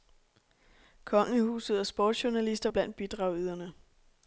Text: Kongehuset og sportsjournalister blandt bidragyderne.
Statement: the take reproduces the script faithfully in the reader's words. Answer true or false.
true